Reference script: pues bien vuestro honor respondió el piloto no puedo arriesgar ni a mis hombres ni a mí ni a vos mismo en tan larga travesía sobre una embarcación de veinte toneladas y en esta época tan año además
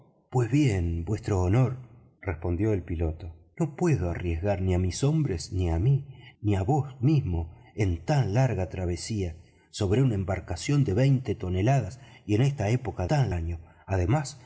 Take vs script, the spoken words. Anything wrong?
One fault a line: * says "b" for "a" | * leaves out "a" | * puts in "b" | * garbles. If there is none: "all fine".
all fine